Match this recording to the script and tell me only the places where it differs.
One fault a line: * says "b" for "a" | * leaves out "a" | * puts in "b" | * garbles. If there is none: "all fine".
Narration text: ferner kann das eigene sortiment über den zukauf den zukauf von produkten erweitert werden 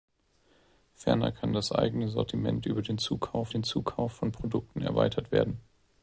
all fine